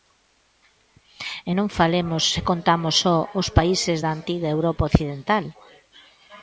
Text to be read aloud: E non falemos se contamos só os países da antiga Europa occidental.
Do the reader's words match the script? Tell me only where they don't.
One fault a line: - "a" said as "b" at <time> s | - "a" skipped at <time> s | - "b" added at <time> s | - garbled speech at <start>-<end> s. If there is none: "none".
none